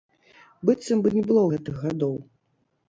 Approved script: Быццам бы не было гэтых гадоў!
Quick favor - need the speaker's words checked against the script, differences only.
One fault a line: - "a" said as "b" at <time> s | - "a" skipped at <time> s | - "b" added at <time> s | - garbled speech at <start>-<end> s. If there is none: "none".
none